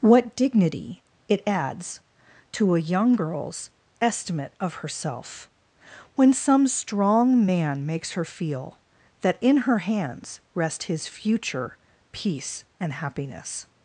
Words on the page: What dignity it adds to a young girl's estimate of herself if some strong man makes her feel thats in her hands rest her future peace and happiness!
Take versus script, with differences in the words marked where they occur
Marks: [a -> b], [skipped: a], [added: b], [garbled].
What dignity it adds to a young girl's estimate of herself [if -> when] some strong man makes her feel [thats -> that] in her hands rest [her -> his] future peace and happiness!